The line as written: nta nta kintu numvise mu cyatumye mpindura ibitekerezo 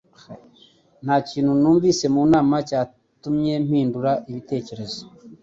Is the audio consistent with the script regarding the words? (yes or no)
no